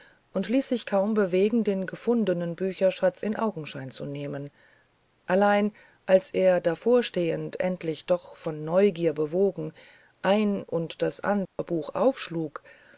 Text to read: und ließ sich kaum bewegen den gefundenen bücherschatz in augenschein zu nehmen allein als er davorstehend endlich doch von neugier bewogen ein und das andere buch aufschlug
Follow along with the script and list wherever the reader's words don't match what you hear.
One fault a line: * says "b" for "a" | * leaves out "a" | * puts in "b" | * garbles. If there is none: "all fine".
all fine